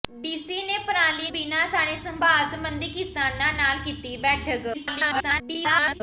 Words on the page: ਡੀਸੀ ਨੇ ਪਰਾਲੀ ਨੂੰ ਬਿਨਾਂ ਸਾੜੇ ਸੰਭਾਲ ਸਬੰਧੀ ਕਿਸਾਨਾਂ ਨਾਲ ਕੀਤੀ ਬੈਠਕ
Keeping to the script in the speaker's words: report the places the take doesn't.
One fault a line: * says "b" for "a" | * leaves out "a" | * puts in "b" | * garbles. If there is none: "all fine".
* leaves out "ਨੂੰ"
* garbles